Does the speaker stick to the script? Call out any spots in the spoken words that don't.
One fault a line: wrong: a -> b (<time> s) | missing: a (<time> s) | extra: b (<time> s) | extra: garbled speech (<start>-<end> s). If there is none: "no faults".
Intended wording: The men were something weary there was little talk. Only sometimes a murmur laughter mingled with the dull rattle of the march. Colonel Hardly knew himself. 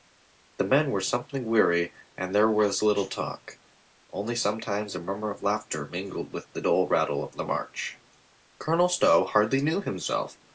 extra: and (2.2 s)
extra: of (5.3 s)
extra: Stow (8.9 s)